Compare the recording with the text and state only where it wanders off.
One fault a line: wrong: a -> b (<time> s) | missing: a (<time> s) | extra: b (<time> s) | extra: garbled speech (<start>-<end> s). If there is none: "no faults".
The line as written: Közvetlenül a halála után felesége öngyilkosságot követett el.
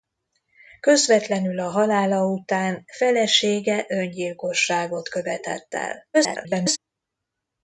extra: garbled speech (6.1-6.8 s)